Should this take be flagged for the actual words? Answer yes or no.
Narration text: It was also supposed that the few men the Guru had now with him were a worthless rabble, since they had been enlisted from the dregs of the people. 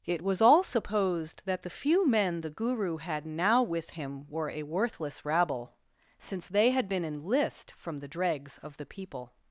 yes